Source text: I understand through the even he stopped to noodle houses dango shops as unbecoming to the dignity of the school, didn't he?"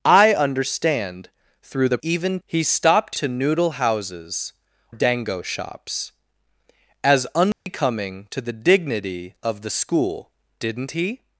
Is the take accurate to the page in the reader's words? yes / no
yes